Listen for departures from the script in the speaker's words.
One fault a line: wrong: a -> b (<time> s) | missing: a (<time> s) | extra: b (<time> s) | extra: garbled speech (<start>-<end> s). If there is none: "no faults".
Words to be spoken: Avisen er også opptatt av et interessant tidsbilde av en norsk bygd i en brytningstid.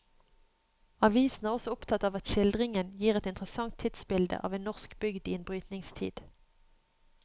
extra: at skildringen gir (2.2 s)